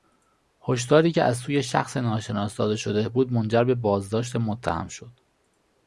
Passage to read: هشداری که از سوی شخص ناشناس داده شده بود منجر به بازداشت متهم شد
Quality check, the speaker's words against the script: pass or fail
pass